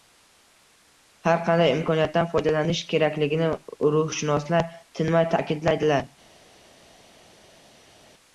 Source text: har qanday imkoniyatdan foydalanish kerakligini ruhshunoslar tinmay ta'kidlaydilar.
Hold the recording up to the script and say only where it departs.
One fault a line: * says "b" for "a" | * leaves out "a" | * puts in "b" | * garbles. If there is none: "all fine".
all fine